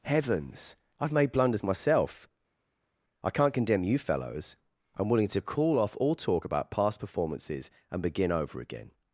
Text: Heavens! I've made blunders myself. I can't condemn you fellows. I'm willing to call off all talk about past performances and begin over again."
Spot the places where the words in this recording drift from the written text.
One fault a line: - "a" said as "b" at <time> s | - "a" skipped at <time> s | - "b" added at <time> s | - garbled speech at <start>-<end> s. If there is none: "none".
none